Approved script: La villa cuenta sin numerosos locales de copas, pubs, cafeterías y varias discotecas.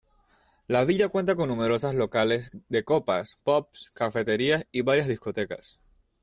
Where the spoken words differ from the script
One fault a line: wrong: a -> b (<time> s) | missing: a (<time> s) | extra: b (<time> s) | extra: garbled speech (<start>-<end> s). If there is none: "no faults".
wrong: sin -> con (1.4 s)